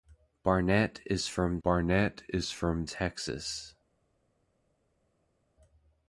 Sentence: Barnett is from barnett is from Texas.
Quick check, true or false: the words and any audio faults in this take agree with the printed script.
true